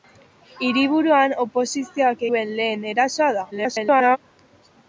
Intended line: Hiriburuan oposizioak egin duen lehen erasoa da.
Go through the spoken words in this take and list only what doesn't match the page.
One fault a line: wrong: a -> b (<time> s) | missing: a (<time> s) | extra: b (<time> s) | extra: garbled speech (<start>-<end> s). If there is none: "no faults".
missing: egin (2.2 s)
extra: garbled speech (3.5-4.2 s)